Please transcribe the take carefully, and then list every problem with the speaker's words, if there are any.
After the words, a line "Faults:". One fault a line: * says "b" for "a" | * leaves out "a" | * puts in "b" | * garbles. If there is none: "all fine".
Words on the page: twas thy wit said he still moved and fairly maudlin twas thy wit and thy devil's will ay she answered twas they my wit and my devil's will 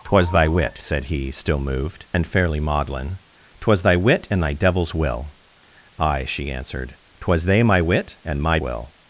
twas thy wit said he still moved and fairly maudlin twas thy wit and thy devil's will ay she answered twas they my wit and my will
Faults:
* leaves out "devil's"